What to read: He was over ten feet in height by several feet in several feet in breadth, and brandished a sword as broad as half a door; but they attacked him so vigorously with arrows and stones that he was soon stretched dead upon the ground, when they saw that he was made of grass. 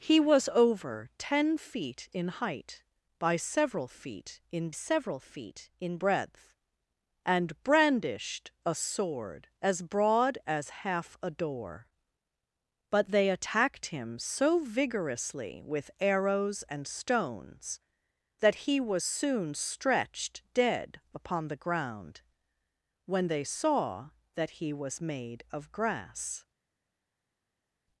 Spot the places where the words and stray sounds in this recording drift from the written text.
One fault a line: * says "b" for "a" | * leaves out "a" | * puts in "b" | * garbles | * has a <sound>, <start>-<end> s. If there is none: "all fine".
all fine